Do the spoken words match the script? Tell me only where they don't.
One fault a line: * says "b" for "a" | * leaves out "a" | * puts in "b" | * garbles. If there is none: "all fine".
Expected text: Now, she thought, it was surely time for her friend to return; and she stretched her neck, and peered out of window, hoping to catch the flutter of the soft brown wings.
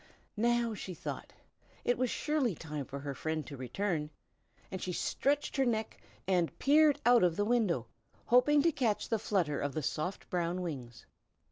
* puts in "the"